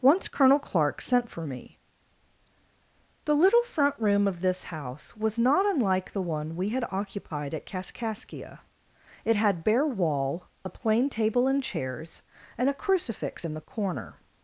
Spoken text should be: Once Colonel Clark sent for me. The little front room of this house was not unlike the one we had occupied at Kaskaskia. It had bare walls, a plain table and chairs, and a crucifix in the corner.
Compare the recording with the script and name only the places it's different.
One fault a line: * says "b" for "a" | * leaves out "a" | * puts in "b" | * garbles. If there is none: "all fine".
* says "wall" for "walls"